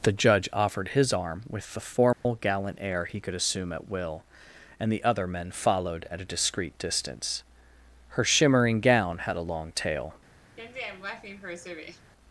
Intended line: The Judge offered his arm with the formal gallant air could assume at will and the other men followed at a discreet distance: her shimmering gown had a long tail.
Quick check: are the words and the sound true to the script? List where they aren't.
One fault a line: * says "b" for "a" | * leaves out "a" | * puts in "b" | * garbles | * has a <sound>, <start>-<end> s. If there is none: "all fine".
* has a dropout, 2.1-2.3 s
* puts in "he"
* has a laugh, 10.6-12.1 s